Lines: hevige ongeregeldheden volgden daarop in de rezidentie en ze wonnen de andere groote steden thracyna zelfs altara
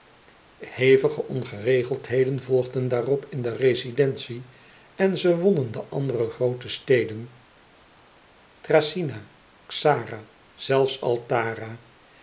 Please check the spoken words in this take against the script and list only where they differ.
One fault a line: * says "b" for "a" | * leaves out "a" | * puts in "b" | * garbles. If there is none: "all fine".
* puts in "xara"